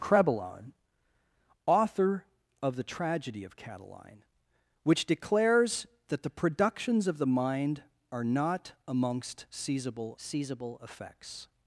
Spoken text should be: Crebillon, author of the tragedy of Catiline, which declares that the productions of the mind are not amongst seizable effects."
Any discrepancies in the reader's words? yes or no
yes